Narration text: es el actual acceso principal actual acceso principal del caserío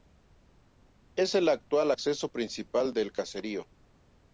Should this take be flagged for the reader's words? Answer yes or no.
yes